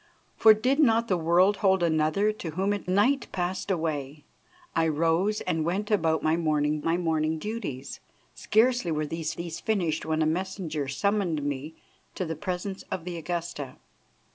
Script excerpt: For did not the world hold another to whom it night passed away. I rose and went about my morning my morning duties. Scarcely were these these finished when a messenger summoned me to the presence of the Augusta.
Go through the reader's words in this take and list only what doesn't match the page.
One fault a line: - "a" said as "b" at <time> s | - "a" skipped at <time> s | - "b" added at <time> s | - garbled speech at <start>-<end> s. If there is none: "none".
none